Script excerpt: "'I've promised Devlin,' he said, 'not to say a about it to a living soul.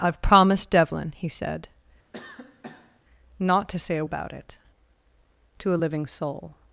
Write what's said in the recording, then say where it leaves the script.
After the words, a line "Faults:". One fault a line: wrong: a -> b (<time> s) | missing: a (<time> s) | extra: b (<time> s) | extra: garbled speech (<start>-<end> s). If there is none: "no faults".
"'I've promised Devlin,' he said, 'not to say a about it to a living soul.
Faults:
no faults